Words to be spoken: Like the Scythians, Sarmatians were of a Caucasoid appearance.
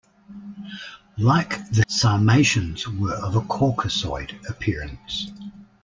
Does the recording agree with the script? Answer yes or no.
no